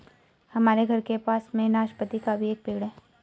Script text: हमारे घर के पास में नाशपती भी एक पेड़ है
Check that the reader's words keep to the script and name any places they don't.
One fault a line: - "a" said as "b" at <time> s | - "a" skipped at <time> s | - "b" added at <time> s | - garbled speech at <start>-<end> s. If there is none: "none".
- "का" added at 2.2 s